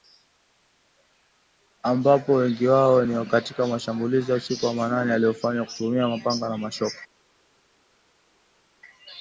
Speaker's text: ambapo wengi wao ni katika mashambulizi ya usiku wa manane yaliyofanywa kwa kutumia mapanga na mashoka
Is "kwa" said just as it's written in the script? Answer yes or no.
no